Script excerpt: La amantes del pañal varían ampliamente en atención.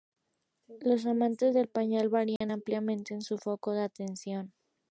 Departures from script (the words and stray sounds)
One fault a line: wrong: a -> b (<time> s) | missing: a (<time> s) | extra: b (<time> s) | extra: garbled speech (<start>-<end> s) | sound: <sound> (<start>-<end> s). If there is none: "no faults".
wrong: La -> Los (0.8 s)
sound: dropout (2.4-2.4 s)
extra: su foco de (3.2 s)